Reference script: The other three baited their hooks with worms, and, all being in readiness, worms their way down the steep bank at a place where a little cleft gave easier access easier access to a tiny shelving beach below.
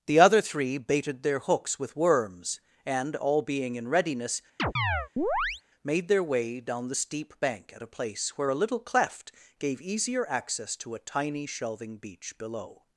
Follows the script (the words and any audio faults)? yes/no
no